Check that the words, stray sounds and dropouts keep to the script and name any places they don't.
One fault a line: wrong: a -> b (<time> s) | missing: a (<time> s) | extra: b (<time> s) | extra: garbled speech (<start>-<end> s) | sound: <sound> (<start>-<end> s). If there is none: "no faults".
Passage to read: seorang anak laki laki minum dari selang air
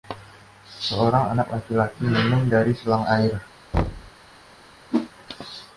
sound: thud (3.7-4.1 s)
sound: whoosh (4.9-5.1 s)